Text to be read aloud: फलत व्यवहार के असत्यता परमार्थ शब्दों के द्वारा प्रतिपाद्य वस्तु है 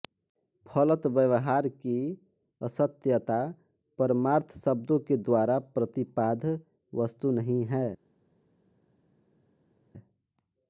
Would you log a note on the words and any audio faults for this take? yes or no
yes